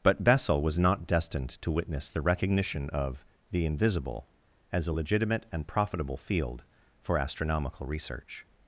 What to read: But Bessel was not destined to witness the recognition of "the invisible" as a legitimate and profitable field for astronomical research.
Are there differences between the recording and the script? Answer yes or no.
no